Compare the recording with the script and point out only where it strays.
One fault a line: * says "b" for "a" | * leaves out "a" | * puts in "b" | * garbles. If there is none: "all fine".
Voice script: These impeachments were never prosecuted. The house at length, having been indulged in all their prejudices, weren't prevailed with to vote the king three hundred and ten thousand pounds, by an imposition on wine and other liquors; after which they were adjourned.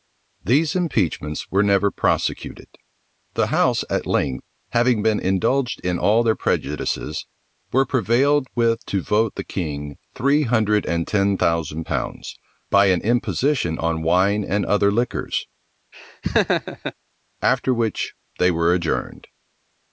* says "were" for "weren't"